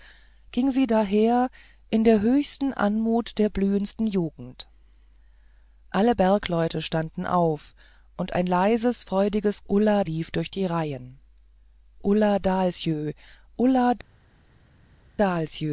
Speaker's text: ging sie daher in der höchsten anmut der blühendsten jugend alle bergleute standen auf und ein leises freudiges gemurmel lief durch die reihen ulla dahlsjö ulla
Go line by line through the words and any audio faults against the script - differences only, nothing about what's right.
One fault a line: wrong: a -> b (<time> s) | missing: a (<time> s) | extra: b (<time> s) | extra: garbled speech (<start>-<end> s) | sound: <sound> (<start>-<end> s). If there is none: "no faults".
wrong: gemurmel -> ulla (9.7 s)